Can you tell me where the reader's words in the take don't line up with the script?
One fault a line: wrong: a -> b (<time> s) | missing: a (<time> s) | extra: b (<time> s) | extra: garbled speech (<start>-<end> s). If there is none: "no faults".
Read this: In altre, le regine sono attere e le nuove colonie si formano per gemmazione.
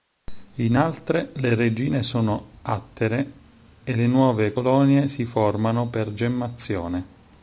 no faults